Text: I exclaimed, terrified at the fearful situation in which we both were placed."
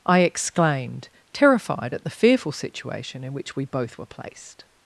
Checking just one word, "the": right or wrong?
right